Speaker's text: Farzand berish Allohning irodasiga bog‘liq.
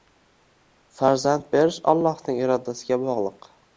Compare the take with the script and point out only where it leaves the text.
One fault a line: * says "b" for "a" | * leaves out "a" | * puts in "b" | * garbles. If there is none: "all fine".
all fine